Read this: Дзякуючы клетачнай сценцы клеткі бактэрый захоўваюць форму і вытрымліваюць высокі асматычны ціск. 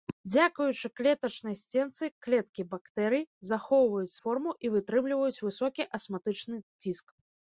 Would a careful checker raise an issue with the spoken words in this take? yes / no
no